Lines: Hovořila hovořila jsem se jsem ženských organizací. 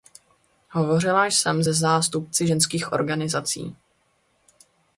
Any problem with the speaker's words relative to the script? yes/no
yes